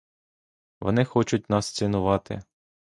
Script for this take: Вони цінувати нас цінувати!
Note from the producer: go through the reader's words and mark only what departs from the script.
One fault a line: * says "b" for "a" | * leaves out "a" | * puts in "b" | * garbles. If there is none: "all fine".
* says "хочуть" for "цінувати"